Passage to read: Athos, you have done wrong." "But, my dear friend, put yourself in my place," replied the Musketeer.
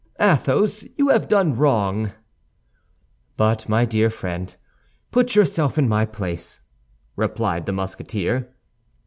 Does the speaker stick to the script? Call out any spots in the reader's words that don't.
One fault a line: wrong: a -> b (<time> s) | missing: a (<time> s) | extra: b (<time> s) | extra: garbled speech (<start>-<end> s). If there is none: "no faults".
no faults